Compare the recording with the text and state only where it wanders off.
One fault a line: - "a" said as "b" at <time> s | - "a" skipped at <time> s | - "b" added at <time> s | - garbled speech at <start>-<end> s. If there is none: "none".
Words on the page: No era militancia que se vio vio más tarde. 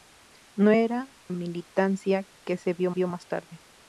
none